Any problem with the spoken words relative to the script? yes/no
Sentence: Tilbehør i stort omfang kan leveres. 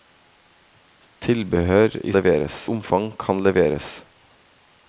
yes